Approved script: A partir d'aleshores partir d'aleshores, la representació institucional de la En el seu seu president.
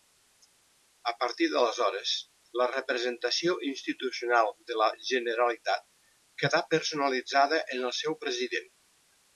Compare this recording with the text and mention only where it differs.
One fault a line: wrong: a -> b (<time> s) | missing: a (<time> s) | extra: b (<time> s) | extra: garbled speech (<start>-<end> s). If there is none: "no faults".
missing: partir d'aleshores (2.1 s)
extra: Generalitat quedà personalitzada (5.1 s)
missing: seu (8.2 s)